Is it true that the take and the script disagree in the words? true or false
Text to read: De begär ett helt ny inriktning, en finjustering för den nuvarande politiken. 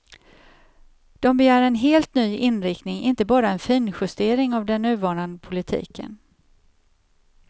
true